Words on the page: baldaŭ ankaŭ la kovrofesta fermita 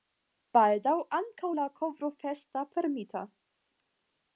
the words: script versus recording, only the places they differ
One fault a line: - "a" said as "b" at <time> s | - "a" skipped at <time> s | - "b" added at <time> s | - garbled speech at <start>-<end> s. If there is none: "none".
none